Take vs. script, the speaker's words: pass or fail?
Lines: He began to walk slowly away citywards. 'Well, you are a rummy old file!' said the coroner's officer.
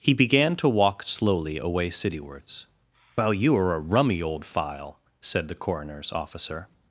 pass